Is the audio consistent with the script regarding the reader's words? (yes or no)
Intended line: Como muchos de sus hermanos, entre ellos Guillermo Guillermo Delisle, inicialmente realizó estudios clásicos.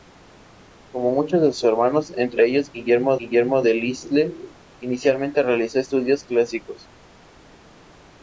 yes